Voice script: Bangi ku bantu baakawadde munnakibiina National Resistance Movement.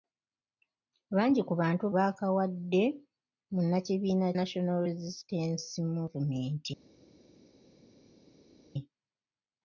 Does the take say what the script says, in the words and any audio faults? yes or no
yes